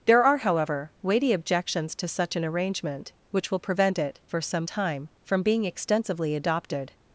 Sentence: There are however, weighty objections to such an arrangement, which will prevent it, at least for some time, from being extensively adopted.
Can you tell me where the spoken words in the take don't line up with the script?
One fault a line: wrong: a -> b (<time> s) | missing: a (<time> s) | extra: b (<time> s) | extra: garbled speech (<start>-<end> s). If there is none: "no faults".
missing: at least (4.2 s)